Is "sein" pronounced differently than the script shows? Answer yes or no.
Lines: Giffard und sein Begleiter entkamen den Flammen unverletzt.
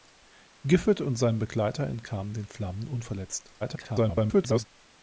no